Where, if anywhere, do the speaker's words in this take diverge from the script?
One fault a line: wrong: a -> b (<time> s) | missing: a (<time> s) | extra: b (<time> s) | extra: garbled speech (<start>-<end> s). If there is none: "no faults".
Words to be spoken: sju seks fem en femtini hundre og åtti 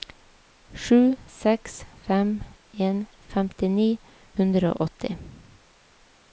no faults